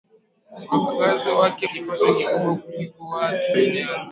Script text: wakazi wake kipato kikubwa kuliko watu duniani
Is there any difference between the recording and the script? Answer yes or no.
no